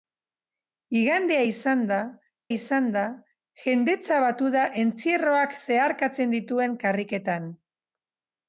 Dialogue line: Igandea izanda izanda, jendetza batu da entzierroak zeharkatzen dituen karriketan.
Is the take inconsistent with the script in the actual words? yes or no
no